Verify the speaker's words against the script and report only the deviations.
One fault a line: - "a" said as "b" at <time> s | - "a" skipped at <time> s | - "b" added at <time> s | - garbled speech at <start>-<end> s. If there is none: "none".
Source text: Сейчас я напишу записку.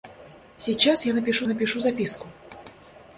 - "напишу" added at 1.5 s